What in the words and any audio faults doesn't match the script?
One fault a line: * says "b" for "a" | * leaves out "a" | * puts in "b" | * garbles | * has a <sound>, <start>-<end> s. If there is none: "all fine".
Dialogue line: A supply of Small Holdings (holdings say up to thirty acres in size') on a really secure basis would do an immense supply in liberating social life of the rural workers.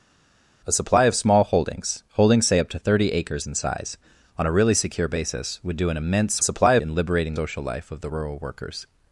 all fine